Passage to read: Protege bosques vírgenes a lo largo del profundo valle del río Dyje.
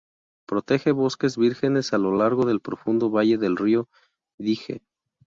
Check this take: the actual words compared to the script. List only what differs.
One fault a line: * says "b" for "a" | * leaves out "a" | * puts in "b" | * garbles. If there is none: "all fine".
all fine